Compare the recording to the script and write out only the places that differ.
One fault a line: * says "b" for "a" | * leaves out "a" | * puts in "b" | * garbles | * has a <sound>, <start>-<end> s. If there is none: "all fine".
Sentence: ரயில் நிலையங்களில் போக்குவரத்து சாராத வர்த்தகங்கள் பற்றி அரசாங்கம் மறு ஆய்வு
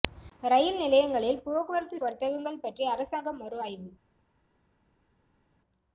* leaves out "சாராத"